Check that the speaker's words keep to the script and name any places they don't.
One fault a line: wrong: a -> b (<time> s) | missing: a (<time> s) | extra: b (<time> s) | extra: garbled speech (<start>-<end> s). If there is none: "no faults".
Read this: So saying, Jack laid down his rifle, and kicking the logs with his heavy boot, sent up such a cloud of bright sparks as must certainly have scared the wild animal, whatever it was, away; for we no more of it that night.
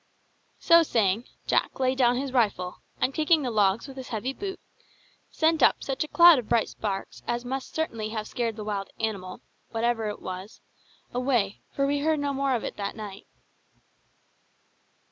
extra: heard (12.0 s)